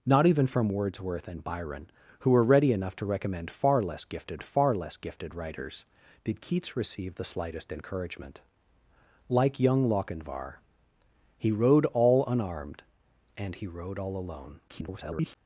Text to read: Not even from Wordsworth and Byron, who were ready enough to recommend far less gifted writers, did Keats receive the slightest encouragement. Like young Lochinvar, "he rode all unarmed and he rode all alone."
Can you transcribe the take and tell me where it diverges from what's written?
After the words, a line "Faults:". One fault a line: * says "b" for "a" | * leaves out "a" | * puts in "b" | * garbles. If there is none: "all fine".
Not even from Wordsworth and Byron, who were ready enough to recommend far less gifted far less gifted writers, did Keats receive the slightest encouragement. Like young Lochinvar, "he rode all unarmed and he rode all alone." [garbled]
Faults:
* puts in "far less gifted"
* garbles